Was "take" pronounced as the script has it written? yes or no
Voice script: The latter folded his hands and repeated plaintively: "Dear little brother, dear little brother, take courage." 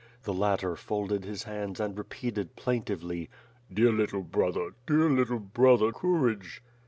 no